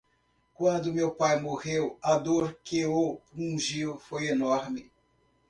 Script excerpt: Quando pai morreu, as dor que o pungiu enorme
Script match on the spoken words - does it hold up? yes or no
no